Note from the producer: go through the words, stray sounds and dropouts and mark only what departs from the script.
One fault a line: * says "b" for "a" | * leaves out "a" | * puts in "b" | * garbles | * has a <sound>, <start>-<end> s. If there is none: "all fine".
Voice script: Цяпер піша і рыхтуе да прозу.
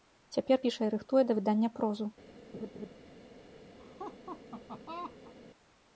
* puts in "выдання"
* has a laugh, 2.5-2.9 s
* has a laugh, 3.8-5.3 s